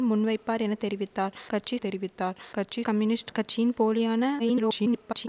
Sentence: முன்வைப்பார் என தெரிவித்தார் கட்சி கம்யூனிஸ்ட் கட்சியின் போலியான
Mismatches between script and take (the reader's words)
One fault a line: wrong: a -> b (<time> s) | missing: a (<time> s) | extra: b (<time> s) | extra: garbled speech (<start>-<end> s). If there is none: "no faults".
extra: தெரிவித்தார் கட்சி (1.8 s)
extra: garbled speech (4.4-5.3 s)